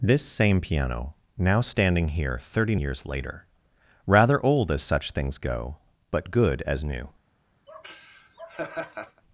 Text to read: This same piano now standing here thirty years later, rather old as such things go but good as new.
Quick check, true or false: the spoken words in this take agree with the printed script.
true